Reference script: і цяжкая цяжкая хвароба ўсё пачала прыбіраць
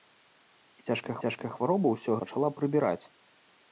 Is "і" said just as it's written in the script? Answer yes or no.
yes